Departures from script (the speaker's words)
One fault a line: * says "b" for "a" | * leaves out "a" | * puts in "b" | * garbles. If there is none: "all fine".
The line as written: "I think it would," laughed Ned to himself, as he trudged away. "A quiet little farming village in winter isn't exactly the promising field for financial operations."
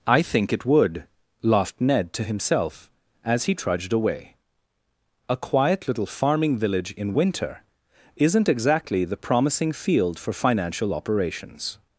all fine